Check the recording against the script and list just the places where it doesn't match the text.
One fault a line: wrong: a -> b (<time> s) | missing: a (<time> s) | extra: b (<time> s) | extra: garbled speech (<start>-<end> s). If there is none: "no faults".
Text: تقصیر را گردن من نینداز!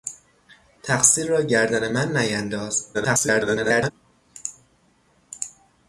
extra: garbled speech (2.9-3.9 s)